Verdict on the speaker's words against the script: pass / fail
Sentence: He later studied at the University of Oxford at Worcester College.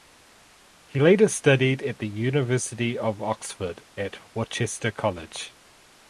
pass